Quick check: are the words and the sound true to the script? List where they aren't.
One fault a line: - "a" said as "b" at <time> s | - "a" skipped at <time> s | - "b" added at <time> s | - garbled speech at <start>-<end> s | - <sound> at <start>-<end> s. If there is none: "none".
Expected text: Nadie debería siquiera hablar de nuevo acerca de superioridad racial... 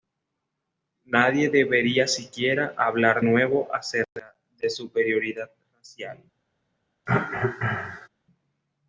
- "de" skipped at 3.2 s
- cough at 7.1-8.1 s